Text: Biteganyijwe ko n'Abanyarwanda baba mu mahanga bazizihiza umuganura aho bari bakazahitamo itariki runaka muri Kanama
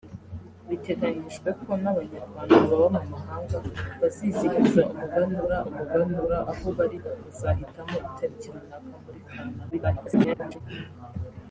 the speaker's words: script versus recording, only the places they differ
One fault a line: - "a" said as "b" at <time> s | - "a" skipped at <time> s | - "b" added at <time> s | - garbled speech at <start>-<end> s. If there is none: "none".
- "umuganura" added at 5.7 s
- garbled speech at 9.7-10.6 s